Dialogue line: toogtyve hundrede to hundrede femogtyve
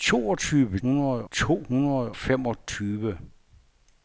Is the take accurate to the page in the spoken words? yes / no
yes